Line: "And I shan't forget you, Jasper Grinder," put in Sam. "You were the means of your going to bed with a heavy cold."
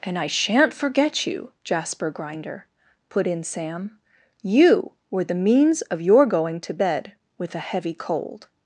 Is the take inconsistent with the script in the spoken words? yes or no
no